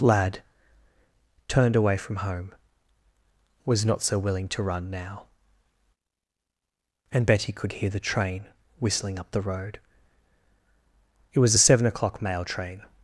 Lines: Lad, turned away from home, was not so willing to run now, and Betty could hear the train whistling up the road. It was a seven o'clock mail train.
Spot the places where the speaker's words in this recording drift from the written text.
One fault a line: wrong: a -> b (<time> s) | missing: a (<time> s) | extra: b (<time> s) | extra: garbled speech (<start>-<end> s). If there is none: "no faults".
no faults